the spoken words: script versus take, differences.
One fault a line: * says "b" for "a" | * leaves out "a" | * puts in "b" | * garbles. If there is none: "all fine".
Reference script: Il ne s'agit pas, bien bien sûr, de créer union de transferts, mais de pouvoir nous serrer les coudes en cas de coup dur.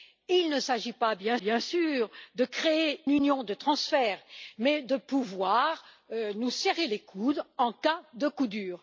all fine